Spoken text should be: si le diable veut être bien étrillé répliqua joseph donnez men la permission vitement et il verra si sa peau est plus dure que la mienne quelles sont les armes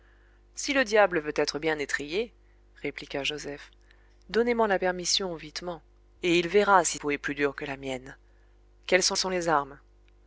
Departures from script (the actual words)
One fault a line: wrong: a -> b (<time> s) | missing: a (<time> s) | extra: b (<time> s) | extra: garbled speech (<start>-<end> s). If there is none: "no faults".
missing: sa (7.0 s)
extra: sont (9.2 s)